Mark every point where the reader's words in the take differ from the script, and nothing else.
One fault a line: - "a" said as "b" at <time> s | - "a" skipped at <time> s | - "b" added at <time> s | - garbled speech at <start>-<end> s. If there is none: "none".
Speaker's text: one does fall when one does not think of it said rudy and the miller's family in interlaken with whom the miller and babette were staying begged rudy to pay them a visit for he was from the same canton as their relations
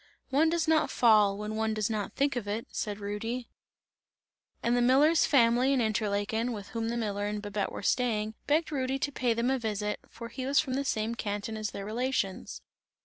- "not" added at 0.7 s